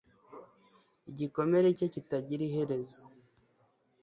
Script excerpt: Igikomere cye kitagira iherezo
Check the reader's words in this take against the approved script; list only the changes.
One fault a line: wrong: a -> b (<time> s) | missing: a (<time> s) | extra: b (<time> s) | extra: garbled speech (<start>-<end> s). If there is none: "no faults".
no faults